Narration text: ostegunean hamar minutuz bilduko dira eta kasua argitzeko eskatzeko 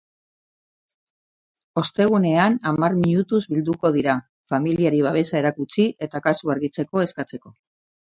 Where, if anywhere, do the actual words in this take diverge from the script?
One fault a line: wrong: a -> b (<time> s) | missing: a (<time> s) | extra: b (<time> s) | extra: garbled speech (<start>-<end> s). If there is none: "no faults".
extra: familiari babesa erakutsi (4.5 s)